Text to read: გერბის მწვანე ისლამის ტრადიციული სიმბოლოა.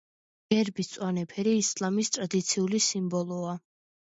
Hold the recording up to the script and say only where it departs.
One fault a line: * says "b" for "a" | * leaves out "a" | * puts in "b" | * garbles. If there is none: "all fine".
* puts in "ფერი"